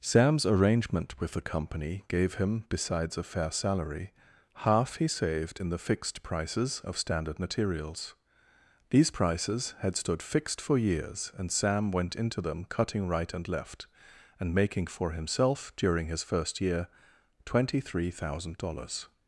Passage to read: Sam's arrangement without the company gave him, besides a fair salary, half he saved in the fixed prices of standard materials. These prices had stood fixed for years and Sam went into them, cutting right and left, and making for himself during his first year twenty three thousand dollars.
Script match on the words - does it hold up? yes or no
no